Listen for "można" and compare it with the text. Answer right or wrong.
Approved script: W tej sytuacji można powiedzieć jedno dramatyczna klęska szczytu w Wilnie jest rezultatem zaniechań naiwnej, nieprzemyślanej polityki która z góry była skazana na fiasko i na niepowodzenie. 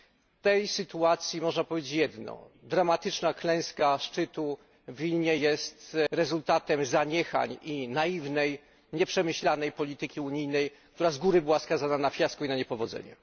right